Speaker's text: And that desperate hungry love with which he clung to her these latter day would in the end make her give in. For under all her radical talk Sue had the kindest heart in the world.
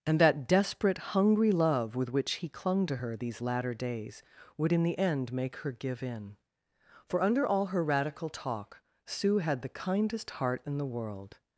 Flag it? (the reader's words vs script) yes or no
yes